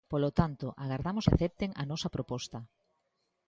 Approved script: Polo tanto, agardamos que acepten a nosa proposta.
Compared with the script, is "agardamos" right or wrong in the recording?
right